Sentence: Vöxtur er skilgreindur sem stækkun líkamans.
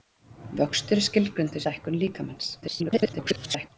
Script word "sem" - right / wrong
wrong